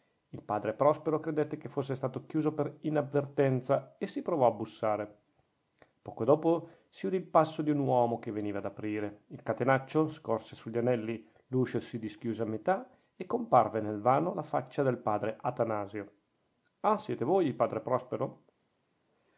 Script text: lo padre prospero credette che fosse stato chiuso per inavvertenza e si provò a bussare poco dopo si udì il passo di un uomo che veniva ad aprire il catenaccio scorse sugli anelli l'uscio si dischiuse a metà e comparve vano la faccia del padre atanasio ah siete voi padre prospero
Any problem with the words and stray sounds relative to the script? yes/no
yes